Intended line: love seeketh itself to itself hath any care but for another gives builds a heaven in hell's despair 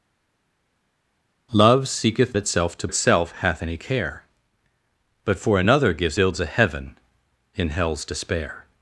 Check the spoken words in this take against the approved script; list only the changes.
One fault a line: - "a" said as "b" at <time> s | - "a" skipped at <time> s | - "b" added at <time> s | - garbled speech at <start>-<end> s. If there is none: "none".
none